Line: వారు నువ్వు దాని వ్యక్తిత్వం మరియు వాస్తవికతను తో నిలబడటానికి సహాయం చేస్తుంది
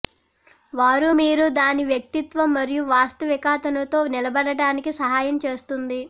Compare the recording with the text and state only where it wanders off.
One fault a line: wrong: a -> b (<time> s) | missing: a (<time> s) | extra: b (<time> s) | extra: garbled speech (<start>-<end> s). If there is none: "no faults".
wrong: నువ్వు -> మీరు (1.2 s)